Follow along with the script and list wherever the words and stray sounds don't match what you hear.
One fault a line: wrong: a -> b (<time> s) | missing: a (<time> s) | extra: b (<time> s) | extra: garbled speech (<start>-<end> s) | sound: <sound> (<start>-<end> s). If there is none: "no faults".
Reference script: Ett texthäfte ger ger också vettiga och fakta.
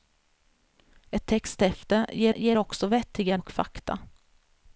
no faults